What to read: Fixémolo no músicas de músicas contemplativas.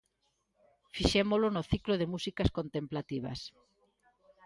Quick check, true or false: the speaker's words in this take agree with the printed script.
false